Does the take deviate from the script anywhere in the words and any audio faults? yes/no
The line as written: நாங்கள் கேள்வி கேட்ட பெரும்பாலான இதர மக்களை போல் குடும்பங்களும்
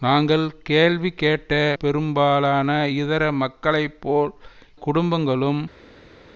no